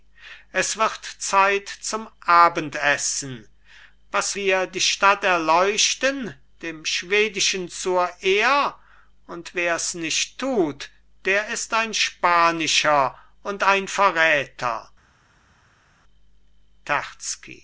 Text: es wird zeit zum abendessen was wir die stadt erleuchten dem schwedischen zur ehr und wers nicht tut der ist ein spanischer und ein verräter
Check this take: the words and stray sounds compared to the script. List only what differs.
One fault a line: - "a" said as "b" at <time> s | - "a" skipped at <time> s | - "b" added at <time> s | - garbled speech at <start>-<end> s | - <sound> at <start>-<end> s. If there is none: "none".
none